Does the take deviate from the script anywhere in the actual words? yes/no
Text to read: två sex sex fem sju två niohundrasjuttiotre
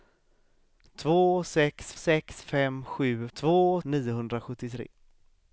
no